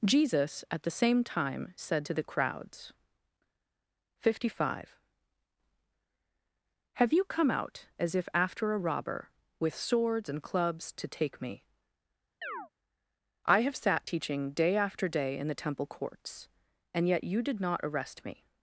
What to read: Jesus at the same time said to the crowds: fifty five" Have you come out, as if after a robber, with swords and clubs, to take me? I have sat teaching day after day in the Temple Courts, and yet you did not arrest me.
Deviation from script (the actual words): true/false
false